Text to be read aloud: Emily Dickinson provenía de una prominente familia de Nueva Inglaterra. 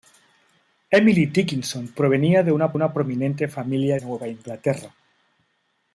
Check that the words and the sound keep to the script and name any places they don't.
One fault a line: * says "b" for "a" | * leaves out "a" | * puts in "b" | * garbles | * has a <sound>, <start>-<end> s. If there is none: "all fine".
* puts in "una"
* leaves out "de"